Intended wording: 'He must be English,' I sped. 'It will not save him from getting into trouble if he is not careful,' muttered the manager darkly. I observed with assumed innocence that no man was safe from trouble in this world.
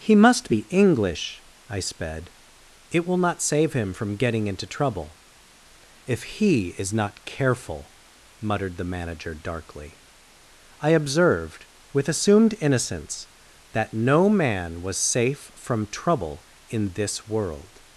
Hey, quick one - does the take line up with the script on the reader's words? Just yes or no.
yes